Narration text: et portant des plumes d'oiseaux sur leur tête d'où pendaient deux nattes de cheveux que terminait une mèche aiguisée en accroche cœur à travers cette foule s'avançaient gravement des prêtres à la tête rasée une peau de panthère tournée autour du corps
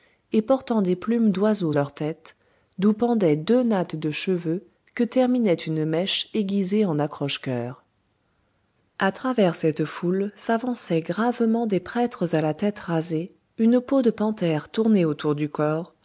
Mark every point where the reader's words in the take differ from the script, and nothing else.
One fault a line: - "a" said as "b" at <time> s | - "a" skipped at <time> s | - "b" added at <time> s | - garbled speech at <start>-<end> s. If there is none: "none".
- "sur" skipped at 1.7 s